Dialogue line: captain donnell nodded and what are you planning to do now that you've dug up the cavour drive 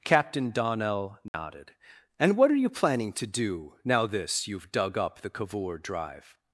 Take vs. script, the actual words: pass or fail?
fail